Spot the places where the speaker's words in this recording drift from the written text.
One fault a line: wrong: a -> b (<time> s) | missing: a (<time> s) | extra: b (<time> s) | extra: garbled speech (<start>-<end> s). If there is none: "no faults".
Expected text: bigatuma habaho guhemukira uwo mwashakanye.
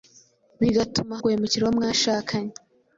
missing: habaho (1.1 s)